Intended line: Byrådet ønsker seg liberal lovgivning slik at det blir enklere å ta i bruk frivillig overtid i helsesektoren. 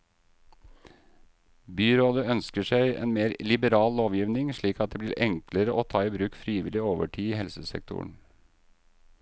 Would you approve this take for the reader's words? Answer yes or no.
no